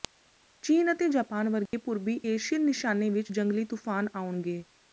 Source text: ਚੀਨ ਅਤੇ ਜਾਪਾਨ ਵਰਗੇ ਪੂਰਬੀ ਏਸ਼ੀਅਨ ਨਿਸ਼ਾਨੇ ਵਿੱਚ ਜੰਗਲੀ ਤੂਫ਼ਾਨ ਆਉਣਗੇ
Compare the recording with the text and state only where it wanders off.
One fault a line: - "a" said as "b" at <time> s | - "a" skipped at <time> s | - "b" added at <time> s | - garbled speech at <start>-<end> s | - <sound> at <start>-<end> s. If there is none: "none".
- dropout at 1.7-1.7 s